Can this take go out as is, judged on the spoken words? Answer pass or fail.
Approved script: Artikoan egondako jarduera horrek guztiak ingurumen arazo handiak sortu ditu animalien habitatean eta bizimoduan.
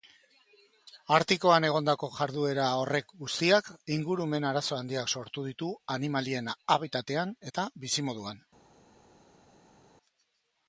pass